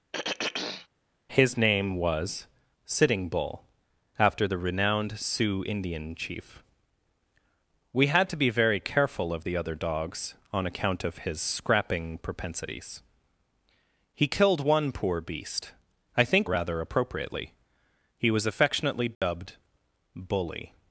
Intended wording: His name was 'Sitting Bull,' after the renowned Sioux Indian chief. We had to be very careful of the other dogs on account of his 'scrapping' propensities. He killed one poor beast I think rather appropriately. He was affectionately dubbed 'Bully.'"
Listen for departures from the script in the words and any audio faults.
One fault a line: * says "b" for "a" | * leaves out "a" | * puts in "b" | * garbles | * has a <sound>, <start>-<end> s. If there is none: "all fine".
* has a throat clearing, 0.1-0.9 s
* has a dropout, 19.1-19.2 s